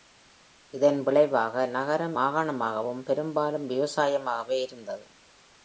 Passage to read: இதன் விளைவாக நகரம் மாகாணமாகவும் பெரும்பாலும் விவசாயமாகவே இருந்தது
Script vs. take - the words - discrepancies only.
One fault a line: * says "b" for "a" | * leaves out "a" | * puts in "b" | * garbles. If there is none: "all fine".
all fine